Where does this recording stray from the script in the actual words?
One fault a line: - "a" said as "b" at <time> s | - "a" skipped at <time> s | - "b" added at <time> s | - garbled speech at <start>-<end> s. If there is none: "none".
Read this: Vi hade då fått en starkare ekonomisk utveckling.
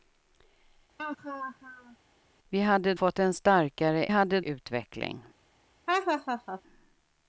- "då" skipped at 2.9 s
- "ekonomisk" said as "hade" at 4.1 s